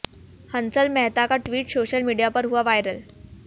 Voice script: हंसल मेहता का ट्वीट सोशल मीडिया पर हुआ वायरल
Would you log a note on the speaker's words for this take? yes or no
no